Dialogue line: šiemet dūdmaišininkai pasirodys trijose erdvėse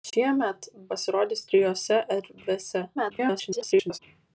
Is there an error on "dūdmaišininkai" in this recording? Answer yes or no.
yes